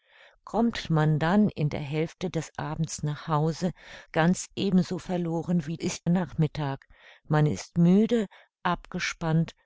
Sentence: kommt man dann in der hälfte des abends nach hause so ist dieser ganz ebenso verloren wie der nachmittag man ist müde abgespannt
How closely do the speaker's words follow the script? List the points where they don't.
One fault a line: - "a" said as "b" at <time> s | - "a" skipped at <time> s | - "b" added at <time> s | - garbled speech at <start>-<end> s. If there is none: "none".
- "so ist dieser" skipped at 3.7 s
- "der" said as "ist" at 5.8 s